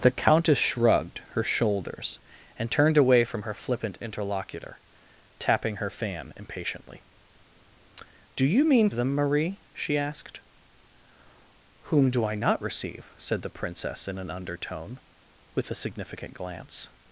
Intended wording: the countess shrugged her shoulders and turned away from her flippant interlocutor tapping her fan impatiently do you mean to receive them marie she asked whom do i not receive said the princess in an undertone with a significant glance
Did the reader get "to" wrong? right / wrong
wrong